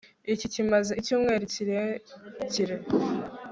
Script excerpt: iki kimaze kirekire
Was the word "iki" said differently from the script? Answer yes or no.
no